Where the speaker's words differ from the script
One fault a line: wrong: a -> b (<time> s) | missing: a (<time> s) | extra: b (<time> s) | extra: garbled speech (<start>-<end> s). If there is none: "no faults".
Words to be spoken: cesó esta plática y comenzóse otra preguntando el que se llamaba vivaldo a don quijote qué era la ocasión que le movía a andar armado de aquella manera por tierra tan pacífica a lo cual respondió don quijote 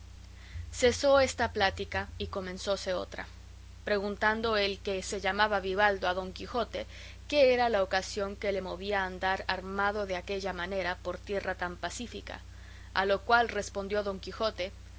no faults